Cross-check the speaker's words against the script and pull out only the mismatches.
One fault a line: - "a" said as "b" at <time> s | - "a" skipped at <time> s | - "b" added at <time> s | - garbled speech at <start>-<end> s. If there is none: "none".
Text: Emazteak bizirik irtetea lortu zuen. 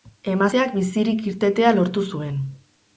none